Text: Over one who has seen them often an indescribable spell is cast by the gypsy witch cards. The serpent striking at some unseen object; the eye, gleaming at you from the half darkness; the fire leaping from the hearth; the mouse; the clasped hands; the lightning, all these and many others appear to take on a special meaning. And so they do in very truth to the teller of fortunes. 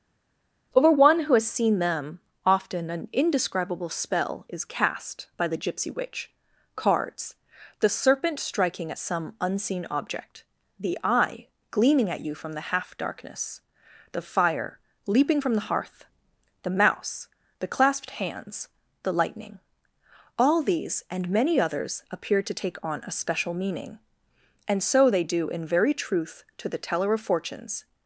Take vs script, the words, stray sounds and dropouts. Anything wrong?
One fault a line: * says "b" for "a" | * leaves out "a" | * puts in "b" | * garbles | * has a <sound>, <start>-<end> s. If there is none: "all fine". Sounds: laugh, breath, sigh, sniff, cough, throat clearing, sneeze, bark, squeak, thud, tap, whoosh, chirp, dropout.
all fine